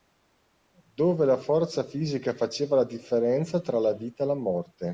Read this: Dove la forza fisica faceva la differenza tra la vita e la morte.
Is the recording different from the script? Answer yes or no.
no